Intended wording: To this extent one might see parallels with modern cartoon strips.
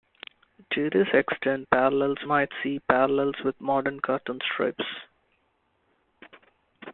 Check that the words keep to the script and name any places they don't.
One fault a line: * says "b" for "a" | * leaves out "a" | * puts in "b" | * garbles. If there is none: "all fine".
* says "parallels" for "one"